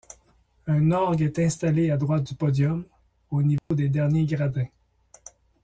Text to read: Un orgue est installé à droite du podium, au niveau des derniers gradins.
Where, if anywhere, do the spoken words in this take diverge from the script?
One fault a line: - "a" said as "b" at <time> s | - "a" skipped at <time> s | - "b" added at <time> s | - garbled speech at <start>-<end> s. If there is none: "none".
none